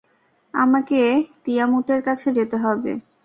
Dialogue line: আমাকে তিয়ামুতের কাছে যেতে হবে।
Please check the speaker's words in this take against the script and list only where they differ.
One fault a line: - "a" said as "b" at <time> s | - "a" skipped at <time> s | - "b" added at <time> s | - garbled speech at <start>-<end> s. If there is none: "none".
none